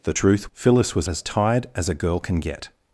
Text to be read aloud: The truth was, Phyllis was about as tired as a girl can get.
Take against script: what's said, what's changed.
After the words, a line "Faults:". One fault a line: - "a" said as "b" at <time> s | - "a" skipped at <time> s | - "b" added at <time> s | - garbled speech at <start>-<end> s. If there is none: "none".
The truth Phyllis was as tired as a girl can get.
Faults:
- "was" skipped at 0.5 s
- "about" skipped at 1.1 s